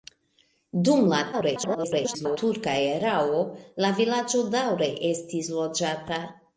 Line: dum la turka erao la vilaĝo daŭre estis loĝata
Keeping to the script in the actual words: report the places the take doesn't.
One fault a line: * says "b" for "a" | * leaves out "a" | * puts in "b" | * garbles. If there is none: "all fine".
* garbles